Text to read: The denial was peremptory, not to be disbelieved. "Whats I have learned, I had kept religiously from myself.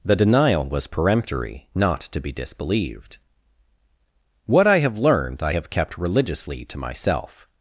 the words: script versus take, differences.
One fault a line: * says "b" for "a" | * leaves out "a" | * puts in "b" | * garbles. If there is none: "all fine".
* says "What" for "Whats"
* says "have" for "had"
* says "to" for "from"